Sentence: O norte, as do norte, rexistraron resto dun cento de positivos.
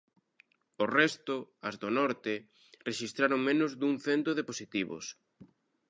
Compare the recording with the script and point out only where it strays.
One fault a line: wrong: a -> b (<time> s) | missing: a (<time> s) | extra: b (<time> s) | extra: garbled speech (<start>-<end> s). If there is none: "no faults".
wrong: norte -> resto (1.0 s)
wrong: resto -> menos (3.5 s)